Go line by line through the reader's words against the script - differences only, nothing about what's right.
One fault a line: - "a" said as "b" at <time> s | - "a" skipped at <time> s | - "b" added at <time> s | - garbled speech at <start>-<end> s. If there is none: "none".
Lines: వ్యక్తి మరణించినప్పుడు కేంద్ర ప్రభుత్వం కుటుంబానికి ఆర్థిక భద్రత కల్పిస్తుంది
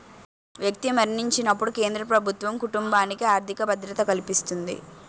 none